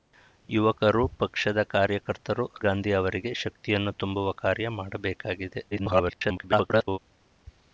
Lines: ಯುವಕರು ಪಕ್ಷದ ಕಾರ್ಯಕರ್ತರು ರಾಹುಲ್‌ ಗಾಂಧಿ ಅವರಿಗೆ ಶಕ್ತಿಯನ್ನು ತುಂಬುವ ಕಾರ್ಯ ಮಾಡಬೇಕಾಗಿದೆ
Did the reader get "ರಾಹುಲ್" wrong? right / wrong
wrong